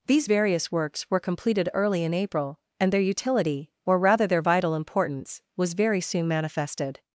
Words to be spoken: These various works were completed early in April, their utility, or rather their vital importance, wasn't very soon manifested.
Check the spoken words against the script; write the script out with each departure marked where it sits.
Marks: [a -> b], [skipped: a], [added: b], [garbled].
These various works were completed early in April, [added: and] their utility, or rather their vital importance, [wasn't -> was] very soon manifested.